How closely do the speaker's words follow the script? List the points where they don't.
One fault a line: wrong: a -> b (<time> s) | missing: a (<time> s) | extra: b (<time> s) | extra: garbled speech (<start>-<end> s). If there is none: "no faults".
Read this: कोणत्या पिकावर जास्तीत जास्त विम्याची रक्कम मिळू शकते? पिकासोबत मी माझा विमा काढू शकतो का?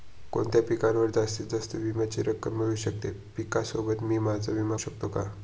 missing: काढू (4.8 s)